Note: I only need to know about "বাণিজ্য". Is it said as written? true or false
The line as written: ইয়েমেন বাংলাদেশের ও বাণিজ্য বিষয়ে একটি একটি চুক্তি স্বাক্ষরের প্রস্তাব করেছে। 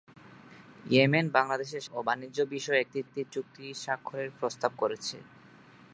true